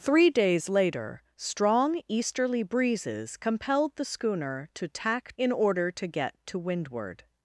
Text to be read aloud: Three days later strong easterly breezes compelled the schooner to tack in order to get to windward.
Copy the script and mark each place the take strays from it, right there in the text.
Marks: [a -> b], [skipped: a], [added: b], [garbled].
Three days later strong easterly breezes compelled the schooner to tack in order to get to windward.